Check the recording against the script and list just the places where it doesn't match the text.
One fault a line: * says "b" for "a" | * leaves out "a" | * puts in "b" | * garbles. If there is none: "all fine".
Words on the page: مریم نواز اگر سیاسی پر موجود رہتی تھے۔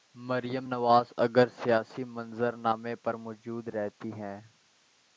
* puts in "منظر نامے"
* says "ہیں" for "تھے"